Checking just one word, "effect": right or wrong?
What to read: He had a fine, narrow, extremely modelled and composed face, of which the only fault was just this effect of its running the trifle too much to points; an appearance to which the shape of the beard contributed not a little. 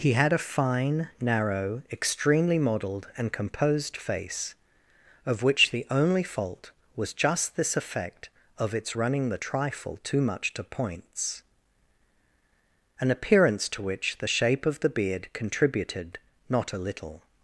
right